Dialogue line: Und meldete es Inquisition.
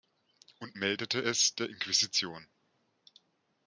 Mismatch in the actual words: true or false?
true